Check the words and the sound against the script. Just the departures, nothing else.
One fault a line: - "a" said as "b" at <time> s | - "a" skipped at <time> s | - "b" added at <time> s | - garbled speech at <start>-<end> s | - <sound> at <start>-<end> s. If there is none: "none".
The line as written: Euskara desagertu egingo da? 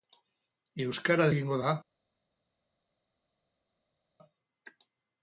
- "desagertu" skipped at 1.3 s